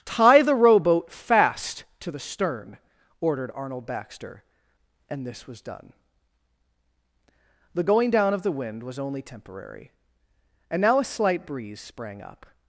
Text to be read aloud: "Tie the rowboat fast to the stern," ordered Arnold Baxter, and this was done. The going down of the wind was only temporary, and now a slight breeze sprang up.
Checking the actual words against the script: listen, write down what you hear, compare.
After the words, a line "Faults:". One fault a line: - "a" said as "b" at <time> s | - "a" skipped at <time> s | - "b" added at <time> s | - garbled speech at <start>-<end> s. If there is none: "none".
"Tie the rowboat fast to the stern," ordered Arnold Baxter, and this was done. The going down of the wind was only temporary, and now a slight breeze sprang up.
Faults:
none